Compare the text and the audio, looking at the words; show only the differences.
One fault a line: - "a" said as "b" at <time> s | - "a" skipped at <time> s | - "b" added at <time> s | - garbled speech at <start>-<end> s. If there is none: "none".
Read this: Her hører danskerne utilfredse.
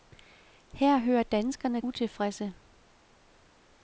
none